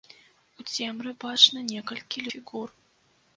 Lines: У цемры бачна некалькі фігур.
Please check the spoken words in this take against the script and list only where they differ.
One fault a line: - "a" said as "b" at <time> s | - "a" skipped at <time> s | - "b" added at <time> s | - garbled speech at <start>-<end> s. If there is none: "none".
none